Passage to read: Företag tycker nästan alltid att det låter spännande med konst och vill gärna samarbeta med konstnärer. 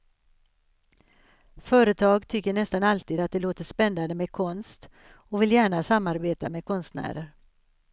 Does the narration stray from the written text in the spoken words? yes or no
no